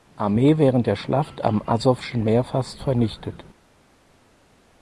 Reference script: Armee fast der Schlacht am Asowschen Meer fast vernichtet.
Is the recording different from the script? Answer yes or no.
yes